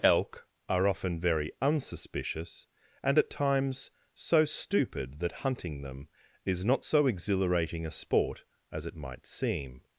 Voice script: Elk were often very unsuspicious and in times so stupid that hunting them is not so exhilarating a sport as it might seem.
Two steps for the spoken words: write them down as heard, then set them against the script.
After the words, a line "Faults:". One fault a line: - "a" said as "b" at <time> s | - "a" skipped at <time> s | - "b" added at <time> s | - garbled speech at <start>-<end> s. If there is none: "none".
Elk are often very unsuspicious and at times so stupid that hunting them is not so exhilarating a sport as it might seem.
Faults:
- "were" said as "are" at 0.7 s
- "in" said as "at" at 3.2 s